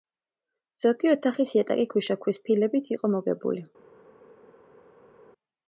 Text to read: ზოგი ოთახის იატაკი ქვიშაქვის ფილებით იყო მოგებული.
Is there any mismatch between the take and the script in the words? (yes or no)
no